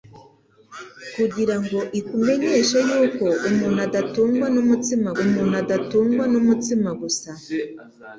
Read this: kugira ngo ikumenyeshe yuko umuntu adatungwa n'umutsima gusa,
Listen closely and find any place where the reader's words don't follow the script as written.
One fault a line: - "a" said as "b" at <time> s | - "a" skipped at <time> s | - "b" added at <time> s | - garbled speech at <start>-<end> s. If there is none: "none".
- "umuntu adatungwa n'umutsima" added at 5.2 s